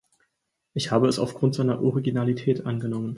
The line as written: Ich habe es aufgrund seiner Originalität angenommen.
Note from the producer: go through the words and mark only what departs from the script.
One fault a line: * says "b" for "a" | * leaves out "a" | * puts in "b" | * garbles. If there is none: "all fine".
all fine